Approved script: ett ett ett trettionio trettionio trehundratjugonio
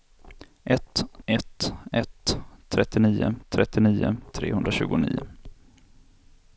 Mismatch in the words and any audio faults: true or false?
false